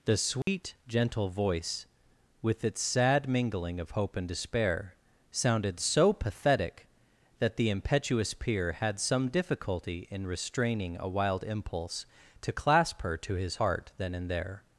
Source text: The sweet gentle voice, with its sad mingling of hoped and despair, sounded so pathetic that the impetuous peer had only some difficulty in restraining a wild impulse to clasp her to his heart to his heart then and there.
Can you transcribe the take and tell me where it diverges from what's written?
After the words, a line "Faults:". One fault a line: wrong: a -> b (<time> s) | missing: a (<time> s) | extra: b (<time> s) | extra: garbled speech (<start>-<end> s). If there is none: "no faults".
The sweet gentle voice, with its sad mingling of hope and despair, sounded so pathetic that the impetuous peer had some difficulty in restraining a wild impulse to clasp her to his heart then and there.
Faults:
wrong: hoped -> hope (3.9 s)
missing: only (9.0 s)
missing: to his heart (13.9 s)